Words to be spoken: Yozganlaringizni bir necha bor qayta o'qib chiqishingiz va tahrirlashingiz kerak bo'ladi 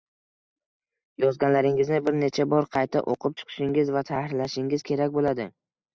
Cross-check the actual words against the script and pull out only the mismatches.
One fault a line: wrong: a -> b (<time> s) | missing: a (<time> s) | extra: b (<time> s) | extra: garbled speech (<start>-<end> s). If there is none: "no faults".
no faults